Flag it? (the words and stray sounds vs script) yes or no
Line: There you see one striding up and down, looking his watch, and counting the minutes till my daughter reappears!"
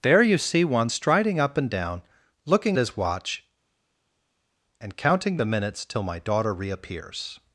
no